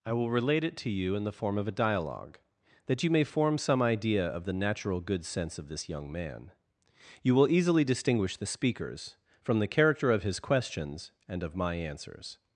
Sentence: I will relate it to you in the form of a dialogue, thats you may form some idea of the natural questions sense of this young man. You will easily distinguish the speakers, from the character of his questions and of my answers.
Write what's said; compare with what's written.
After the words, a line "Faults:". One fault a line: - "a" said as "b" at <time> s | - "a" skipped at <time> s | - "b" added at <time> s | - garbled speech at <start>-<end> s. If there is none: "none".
I will relate it to you in the form of a dialogue, that you may form some idea of the natural good sense of this young man. You will easily distinguish the speakers, from the character of his questions and of my answers.
Faults:
- "thats" said as "that" at 2.9 s
- "questions" said as "good" at 5.0 s